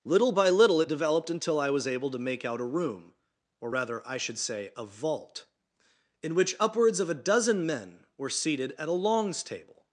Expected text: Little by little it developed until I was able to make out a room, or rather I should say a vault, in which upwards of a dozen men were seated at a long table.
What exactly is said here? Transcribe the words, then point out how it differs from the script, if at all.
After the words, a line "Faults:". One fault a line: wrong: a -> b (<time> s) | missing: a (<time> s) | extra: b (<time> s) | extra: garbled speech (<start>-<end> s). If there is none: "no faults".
Little by little it developed until I was able to make out a room, or rather I should say a vault, in which upwards of a dozen men were seated at a longs table.
Faults:
wrong: long -> longs (8.9 s)